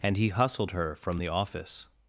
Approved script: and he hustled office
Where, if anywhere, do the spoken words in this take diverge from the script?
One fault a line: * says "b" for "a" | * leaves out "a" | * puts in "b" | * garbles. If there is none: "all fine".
* puts in "her from the"